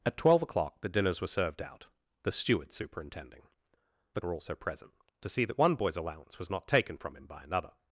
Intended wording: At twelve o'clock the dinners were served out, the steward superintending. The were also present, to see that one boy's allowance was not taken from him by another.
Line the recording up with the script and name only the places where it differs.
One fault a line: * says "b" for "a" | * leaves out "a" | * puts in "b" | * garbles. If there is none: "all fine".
all fine